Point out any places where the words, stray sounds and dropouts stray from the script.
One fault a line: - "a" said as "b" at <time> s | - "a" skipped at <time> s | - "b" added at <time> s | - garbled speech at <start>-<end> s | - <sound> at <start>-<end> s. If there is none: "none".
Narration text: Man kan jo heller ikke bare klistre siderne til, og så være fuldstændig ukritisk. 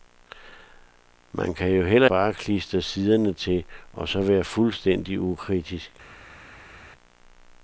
- "ikke" skipped at 2.1 s